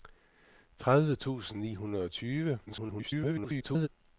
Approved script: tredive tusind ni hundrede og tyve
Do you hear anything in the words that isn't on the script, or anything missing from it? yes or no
yes